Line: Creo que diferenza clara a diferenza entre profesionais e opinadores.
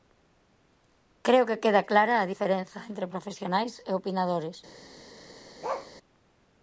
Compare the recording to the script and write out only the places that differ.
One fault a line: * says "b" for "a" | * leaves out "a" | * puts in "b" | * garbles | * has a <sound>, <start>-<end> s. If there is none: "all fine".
* says "queda" for "diferenza"
* has a bark, 5.6-5.9 s